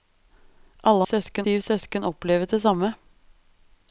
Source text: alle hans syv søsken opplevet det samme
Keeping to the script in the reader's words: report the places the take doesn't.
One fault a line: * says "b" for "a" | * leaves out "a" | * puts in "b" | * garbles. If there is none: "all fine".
* says "søsken" for "hans"